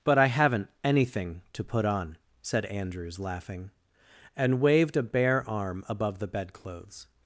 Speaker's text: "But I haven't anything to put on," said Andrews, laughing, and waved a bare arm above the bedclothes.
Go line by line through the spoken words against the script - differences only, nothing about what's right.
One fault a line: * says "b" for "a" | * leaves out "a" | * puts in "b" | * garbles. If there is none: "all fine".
all fine